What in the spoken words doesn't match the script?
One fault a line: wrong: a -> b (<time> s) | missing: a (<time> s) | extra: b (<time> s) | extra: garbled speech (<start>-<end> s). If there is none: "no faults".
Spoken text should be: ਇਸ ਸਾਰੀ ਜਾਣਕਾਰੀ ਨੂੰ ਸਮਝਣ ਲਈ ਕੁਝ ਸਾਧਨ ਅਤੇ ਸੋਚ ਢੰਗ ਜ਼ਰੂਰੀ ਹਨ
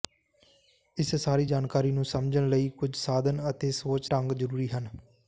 no faults